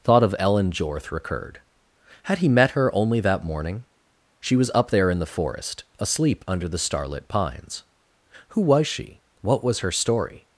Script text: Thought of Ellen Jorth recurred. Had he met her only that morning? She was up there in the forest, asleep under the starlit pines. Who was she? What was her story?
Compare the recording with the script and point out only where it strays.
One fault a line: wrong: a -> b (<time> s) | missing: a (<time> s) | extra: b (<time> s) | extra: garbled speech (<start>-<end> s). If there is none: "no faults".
no faults